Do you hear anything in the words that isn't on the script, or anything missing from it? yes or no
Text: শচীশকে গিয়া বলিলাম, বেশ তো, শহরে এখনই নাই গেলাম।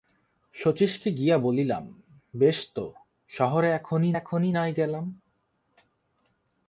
yes